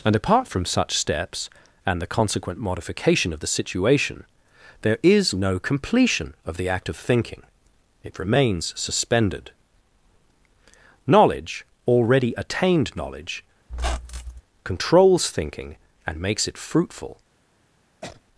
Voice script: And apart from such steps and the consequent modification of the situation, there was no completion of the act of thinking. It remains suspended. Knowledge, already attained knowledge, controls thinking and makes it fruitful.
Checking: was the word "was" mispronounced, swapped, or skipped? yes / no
yes